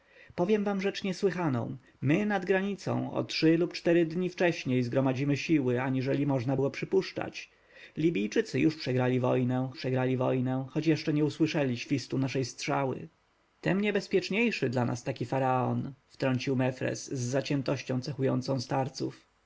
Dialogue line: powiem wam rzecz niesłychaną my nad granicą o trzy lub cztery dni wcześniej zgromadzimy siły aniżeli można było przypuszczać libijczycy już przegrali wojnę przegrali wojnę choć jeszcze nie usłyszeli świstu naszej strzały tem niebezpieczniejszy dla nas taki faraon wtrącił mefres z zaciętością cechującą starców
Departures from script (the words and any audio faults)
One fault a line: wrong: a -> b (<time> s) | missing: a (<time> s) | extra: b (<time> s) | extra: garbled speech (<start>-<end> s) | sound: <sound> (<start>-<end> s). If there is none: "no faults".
no faults